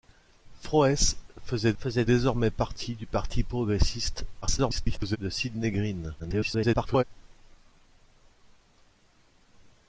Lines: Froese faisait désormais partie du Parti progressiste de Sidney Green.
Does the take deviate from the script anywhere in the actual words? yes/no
yes